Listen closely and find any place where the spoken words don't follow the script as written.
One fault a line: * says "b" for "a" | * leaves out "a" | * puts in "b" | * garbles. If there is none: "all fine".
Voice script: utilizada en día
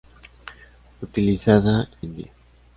all fine